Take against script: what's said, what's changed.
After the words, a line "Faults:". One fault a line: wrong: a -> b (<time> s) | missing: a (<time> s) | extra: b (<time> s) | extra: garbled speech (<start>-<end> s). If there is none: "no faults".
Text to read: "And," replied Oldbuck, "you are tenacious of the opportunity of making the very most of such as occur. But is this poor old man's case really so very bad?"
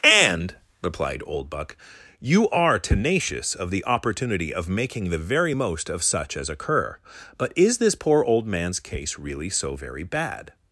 "And," replied Oldbuck, "you are tenacious of the opportunity of making the very most of such as occur. But is this poor old man's case really so very bad?"
Faults:
no faults